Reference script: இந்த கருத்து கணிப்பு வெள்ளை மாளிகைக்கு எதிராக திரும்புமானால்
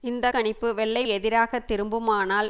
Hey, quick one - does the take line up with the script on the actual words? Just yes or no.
no